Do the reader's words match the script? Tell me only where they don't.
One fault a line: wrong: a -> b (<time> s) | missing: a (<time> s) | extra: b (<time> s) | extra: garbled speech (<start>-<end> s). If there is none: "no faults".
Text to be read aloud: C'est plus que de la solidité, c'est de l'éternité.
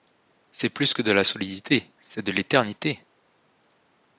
no faults